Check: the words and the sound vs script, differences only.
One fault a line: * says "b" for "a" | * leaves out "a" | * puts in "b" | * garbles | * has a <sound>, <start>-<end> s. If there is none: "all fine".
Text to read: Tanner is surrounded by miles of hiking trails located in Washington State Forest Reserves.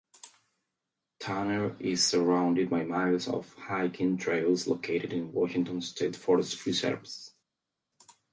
all fine